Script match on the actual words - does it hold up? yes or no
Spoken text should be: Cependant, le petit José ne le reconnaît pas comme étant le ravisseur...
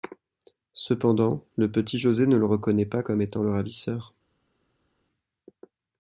yes